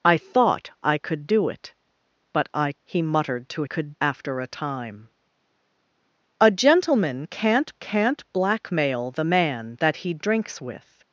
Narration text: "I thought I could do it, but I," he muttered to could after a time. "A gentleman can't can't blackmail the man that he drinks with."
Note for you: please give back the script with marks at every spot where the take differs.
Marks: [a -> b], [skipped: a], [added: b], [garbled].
"I thought I could do it, but I," he muttered to could after a time. "A gentleman can't can't blackmail the man that he drinks with."